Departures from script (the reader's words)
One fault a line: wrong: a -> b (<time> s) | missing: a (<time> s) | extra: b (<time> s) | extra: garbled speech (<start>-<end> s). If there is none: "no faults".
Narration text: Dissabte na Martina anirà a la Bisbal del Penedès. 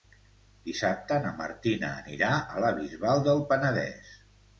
no faults